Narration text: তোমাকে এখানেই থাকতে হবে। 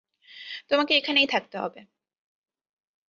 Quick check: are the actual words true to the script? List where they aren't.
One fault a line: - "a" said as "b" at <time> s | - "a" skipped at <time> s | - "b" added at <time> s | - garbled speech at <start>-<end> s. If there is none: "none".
none